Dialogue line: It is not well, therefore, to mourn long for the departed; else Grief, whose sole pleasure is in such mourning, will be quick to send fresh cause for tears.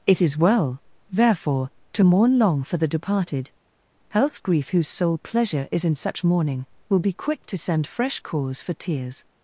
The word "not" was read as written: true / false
false